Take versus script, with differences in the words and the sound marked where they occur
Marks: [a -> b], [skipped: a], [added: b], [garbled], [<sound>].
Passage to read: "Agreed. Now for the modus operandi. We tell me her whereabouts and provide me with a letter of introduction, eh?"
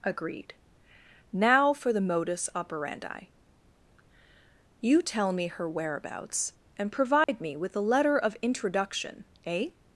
"Agreed. Now for the modus operandi. [We -> You] tell me her whereabouts and provide [dropout] me with a letter of introduction, eh?"